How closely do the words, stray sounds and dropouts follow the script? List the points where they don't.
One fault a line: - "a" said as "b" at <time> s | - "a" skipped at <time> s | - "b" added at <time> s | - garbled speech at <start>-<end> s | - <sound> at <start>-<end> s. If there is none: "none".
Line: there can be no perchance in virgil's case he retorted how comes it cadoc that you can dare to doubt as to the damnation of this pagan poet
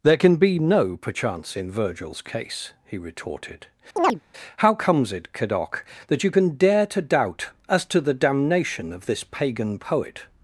- chirp at 4.0-4.2 s